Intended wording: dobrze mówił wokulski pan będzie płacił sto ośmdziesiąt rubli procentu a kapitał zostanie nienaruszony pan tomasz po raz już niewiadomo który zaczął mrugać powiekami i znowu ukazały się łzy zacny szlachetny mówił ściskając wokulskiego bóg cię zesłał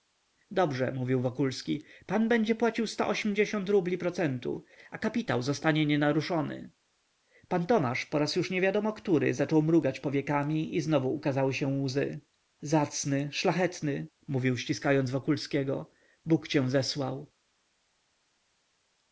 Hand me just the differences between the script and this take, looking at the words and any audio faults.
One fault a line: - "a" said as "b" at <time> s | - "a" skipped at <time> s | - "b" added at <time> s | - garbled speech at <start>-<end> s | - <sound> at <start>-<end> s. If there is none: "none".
none